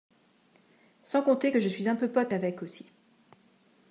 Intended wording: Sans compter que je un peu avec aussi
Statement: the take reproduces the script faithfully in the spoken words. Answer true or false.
false